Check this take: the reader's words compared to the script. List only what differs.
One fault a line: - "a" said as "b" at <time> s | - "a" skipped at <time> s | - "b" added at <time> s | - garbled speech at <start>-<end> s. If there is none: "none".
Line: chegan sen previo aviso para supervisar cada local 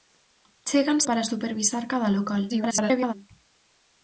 - "sen previo aviso" skipped at 1.0 s
- garbled speech at 2.5-3.1 s